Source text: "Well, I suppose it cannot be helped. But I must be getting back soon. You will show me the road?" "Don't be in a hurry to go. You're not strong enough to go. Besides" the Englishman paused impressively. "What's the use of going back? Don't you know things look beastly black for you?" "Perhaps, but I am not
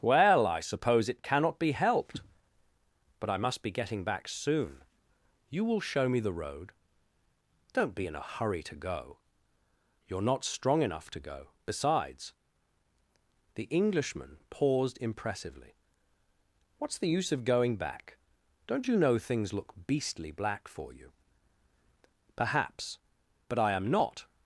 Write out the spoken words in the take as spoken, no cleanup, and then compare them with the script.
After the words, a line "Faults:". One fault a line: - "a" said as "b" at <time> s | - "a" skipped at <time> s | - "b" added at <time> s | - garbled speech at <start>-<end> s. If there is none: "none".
"Well, I suppose it cannot be helped. But I must be getting back soon. You will show me the road?" "Don't be in a hurry to go. You're not strong enough to go. Besides" the Englishman paused impressively. "What's the use of going back? Don't you know things look beastly black for you?" "Perhaps, but I am not
Faults:
none